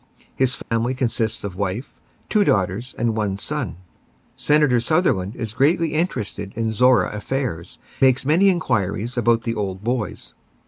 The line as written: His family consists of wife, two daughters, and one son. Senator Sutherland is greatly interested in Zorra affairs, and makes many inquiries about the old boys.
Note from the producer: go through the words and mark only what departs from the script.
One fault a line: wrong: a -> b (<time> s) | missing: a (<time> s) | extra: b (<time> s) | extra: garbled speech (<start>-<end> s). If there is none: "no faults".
missing: and (7.8 s)